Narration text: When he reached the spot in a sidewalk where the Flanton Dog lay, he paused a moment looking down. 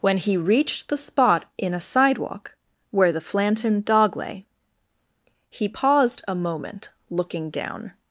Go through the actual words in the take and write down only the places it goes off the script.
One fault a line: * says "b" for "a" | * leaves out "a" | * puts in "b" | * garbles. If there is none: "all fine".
all fine